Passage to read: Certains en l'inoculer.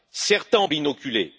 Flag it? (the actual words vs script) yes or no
no